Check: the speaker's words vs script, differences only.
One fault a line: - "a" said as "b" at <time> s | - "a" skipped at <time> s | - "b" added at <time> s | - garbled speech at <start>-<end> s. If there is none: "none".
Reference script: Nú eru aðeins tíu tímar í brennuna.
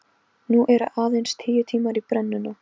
none